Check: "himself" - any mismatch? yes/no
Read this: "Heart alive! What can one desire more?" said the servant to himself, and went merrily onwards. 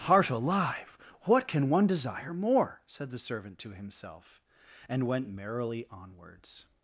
no